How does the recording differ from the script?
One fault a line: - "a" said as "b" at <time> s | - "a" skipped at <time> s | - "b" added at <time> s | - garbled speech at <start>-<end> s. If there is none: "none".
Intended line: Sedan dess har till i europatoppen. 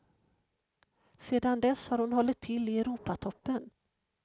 - "hon hållit" added at 2.0 s